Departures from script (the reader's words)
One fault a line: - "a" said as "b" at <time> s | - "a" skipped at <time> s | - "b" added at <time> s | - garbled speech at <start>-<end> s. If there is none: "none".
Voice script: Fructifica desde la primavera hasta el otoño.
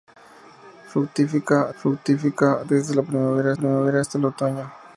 - "fructifica" added at 1.8 s
- "primavera" added at 3.5 s